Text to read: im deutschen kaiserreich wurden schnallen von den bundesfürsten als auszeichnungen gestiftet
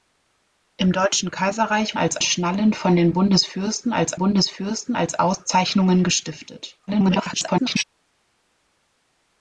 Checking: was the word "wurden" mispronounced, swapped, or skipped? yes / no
yes